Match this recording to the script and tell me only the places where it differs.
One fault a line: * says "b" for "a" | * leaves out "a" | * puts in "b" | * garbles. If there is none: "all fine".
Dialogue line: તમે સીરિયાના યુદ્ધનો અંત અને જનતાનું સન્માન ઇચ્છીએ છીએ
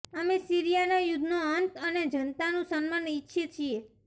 * says "અમે" for "તમે"